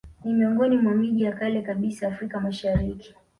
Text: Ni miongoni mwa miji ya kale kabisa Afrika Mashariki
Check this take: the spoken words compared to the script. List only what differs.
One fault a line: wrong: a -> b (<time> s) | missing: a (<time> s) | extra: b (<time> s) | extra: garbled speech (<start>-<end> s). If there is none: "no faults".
no faults